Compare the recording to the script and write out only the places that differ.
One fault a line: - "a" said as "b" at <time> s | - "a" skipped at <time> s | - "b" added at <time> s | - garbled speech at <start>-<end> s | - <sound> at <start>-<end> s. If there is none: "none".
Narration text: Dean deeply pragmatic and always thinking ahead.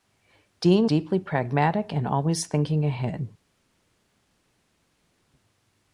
none